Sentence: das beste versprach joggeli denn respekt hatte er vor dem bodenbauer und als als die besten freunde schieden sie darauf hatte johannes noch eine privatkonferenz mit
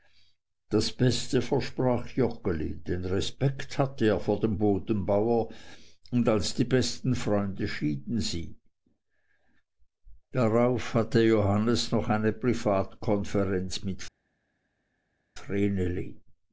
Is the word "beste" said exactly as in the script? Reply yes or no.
yes